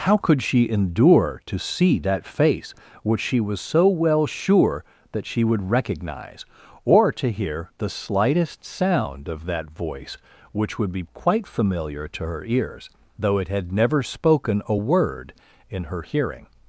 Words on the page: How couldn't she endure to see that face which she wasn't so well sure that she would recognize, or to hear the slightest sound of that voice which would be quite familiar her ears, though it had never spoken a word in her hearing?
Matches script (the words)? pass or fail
fail